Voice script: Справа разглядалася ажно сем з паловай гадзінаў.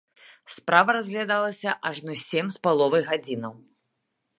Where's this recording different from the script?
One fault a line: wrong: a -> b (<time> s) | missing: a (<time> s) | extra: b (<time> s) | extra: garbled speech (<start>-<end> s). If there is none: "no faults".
no faults